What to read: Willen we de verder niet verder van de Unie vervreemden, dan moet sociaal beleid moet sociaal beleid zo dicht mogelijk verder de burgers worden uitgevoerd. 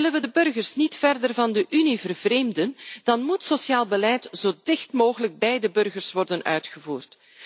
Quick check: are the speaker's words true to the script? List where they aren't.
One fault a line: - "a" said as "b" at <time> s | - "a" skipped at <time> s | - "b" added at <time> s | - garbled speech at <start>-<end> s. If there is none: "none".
- "verder" said as "burgers" at 0.3 s
- "moet sociaal beleid" skipped at 4.3 s
- "verder" said as "bij" at 5.4 s